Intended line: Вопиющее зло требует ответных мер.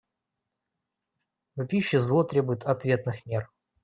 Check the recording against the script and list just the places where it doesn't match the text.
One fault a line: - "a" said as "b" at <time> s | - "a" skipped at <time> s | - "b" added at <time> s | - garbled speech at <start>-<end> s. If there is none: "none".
none